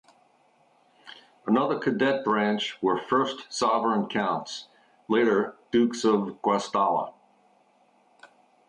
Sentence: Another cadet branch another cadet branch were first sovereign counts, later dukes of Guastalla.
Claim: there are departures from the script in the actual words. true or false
true